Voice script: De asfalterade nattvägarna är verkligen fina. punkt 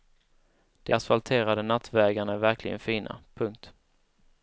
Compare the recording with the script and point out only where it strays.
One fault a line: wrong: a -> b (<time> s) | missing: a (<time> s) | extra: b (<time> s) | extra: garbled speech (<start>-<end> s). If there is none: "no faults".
no faults